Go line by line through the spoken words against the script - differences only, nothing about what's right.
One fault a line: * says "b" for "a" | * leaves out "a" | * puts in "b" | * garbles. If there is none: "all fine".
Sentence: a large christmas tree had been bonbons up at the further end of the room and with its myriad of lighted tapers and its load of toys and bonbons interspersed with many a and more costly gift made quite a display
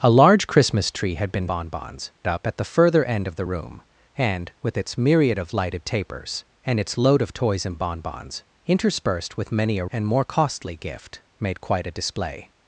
all fine